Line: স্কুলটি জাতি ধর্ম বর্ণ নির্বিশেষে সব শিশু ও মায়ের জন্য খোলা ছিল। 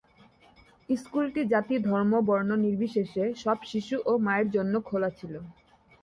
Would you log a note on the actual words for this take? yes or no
no